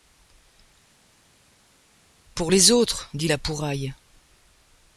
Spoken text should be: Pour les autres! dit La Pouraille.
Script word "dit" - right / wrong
right